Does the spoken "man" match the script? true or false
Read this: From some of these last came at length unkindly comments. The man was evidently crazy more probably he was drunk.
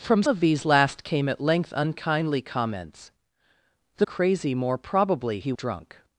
false